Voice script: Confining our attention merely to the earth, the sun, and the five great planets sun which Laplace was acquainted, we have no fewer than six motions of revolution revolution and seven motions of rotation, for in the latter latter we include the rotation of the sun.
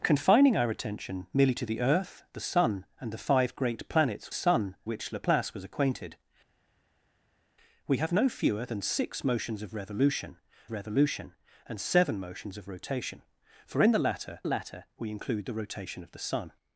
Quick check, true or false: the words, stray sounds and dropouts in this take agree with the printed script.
true